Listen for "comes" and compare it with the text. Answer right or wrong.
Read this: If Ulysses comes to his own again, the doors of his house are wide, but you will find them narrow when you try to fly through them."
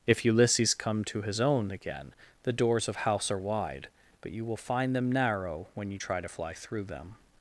wrong